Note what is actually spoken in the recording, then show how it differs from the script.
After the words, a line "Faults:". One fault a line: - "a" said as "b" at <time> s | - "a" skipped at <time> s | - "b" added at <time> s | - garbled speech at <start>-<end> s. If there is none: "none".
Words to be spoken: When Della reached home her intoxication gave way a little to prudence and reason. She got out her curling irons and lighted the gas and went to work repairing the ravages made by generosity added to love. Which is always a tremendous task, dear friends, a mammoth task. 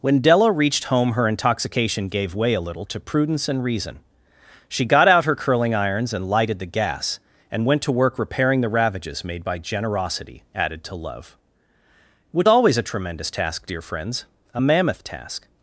When Della reached home her intoxication gave way a little to prudence and reason. She got out her curling irons and lighted the gas and went to work repairing the ravages made by generosity added to love. Which always a tremendous task, dear friends, a mammoth task.
Faults:
- "is" skipped at 12.5 s